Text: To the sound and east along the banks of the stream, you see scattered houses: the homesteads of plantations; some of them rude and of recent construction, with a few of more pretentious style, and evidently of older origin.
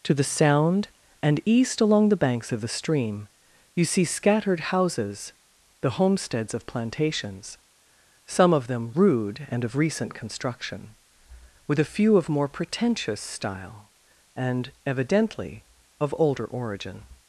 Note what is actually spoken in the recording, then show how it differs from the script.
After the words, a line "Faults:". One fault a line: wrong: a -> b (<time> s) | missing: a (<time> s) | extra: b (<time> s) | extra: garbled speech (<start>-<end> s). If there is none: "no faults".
To the sound and east along the banks of the stream, you see scattered houses: the homesteads of plantations; some of them rude and of recent construction, with a few of more pretentious style, and evidently of older origin.
Faults:
no faults